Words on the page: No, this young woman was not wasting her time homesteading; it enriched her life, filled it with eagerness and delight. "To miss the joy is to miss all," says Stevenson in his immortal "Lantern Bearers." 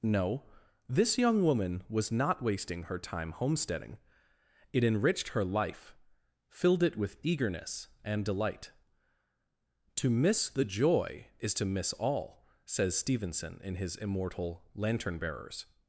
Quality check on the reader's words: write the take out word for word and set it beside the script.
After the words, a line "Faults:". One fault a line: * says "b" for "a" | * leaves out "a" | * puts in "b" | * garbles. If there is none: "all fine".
No, this young woman was not wasting her time homesteading; it enriched her life, filled it with eagerness and delight. "To miss the joy is to miss all," says Stevenson in his immortal "Lantern Bearers."
Faults:
all fine